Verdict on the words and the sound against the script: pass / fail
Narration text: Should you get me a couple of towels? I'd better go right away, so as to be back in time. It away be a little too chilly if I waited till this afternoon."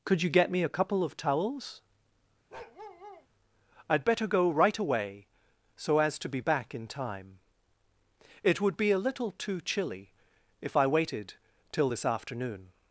fail